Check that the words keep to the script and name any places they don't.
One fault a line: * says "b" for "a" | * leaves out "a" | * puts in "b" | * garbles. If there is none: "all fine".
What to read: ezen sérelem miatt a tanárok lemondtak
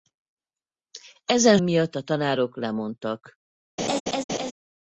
* leaves out "sérelem"